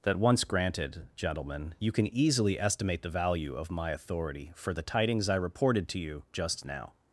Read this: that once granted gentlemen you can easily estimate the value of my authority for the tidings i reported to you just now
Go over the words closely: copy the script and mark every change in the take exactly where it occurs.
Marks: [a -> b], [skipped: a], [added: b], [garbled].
that once granted gentlemen you can easily estimate the value of my authority for the tidings i reported to you just now